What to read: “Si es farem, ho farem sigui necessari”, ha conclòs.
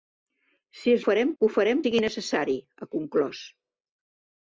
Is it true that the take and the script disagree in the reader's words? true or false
false